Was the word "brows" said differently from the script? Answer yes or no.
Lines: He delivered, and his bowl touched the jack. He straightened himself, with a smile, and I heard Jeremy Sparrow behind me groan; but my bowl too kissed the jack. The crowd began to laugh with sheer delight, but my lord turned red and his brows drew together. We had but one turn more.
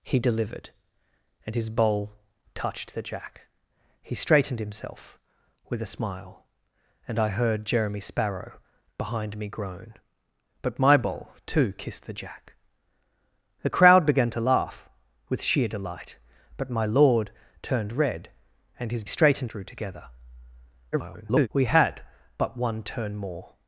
yes